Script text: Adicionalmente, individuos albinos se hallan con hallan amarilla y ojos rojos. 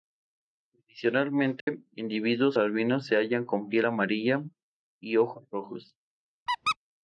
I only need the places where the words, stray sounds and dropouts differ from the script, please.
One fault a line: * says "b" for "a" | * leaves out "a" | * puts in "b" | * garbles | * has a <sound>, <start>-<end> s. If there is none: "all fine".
* has a dropout, 1.6-1.7 s
* says "piel" for "hallan"
* has a squeak, 6.5-6.8 s